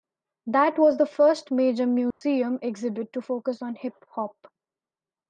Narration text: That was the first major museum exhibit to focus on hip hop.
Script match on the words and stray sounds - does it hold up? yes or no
no